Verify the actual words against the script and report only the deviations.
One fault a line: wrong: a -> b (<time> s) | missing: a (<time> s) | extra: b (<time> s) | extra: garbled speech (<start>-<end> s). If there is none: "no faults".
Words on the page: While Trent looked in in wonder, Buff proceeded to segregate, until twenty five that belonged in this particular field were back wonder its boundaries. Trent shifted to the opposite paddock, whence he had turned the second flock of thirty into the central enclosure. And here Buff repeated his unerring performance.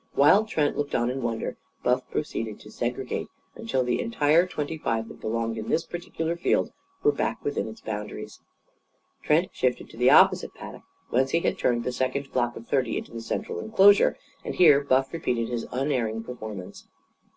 wrong: in -> on (0.9 s)
extra: the entire (3.8 s)
wrong: wonder -> within (7.5 s)